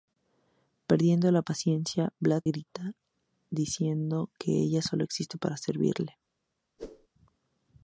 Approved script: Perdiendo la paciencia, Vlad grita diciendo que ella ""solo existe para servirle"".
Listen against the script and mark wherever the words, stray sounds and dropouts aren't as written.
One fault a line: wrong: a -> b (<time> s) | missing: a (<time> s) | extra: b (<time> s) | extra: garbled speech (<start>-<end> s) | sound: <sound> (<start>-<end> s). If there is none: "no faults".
sound: whoosh (6.8-7.1 s)